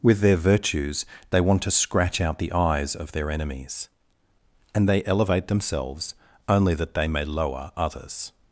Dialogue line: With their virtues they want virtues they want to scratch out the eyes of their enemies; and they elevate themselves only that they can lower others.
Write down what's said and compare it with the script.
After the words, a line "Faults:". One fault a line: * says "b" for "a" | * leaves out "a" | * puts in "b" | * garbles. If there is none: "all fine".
With their virtues they want to scratch out the eyes of their enemies; and they elevate themselves only that they may lower others.
Faults:
* leaves out "virtues they want"
* says "may" for "can"